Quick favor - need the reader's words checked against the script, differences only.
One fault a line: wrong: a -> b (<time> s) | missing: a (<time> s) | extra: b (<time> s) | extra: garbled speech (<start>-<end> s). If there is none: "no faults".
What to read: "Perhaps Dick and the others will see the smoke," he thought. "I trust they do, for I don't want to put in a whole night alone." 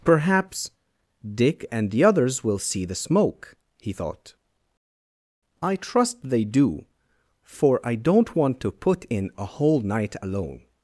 no faults